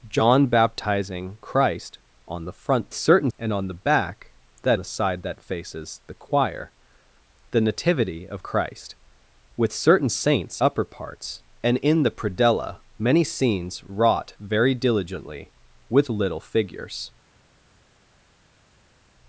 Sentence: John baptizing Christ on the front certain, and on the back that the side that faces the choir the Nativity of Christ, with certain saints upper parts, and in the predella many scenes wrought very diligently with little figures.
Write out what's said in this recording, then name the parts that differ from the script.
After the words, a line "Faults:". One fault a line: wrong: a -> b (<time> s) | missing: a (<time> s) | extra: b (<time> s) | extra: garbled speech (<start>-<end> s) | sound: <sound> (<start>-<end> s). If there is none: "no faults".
John baptizing Christ on the front certain, and on the back that the side that faces the choir the Nativity of Christ, with certain saints upper parts, and in the predella many scenes wrought very diligently with little figures.
Faults:
no faults